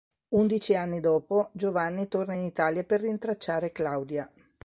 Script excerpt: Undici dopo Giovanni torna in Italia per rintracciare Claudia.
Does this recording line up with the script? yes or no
no